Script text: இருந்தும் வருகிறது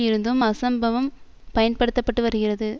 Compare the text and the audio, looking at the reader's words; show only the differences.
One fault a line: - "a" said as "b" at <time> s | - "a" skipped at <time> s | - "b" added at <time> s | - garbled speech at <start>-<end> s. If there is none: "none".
- "அசம்பவம் பயன்படுத்த பட்டு" added at 0.4 s